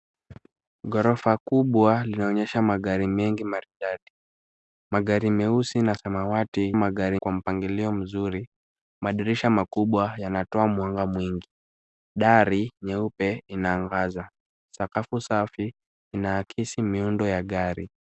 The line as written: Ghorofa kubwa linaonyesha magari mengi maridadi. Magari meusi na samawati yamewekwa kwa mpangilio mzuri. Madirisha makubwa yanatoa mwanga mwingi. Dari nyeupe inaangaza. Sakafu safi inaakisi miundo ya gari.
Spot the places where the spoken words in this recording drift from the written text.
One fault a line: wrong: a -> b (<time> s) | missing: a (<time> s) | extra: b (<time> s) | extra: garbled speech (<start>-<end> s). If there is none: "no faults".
wrong: yamewekwa -> magari (6.7 s)